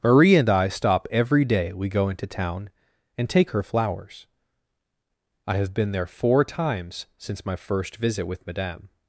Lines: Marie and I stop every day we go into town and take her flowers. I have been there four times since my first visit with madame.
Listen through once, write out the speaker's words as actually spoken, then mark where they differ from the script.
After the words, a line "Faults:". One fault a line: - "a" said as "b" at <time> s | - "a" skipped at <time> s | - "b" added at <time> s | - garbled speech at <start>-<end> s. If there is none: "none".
Marie and I stop every day we go into town and take her flowers. I have been there four times since my first visit with madame.
Faults:
none